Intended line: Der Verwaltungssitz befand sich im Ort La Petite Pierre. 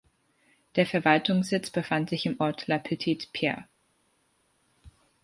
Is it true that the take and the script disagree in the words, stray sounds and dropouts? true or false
false